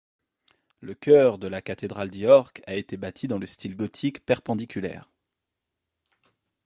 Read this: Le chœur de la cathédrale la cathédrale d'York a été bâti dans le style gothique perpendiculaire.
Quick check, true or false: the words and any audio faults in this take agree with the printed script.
false